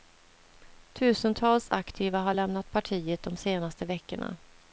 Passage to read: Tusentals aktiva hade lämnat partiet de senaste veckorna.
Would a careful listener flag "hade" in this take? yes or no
yes